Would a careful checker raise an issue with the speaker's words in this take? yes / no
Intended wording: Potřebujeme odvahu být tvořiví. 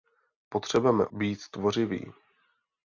yes